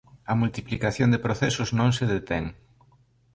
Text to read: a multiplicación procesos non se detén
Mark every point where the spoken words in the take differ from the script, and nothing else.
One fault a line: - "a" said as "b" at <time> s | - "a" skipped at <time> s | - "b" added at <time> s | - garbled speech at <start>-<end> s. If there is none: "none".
- "de" added at 1.1 s